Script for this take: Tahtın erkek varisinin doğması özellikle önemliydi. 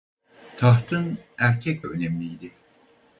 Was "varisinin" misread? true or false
true